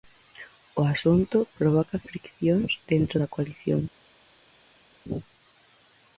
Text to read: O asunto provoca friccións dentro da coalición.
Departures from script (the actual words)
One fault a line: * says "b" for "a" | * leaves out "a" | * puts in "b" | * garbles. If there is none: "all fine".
all fine